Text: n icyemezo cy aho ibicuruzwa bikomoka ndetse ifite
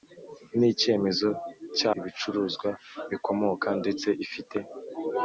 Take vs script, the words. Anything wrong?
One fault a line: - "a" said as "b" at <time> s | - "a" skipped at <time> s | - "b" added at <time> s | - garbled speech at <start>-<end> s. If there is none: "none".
- "aho" skipped at 1.9 s